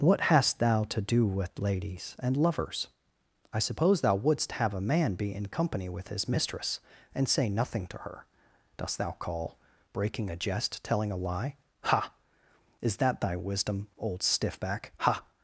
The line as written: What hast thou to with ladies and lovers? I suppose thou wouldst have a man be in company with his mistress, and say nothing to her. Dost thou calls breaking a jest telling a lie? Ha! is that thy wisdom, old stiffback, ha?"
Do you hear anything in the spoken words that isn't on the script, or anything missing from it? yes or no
yes